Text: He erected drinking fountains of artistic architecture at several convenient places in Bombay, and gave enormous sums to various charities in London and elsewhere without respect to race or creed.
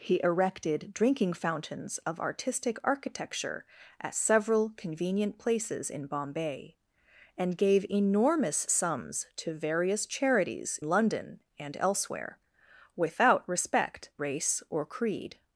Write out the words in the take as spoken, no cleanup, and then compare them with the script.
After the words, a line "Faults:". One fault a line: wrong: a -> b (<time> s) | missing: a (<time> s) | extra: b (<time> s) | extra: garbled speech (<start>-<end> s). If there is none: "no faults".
He erected drinking fountains of artistic architecture at several convenient places in Bombay, and gave enormous sums to various charities London and elsewhere without respect race or creed.
Faults:
missing: in (10.8 s)
missing: to (14.1 s)